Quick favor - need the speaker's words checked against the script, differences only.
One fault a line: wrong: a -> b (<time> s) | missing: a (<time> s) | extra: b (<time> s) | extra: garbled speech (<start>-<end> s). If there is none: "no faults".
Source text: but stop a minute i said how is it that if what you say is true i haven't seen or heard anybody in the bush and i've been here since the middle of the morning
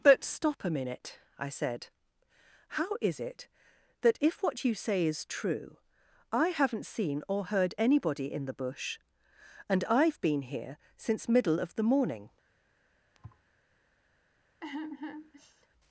missing: the (11.3 s)